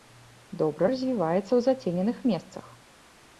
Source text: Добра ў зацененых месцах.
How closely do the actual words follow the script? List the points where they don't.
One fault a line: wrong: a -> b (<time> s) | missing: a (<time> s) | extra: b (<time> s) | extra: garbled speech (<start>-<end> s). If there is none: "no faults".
extra: развіваецца (0.9 s)